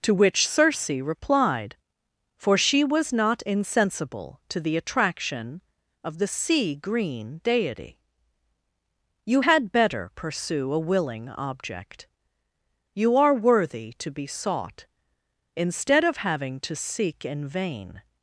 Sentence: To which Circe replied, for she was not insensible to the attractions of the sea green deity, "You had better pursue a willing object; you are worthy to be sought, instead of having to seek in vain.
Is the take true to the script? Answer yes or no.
no